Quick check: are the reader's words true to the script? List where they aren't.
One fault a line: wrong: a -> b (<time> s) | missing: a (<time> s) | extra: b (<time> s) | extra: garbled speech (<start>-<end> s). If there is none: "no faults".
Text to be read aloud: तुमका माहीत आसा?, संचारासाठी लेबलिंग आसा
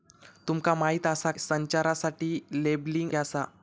no faults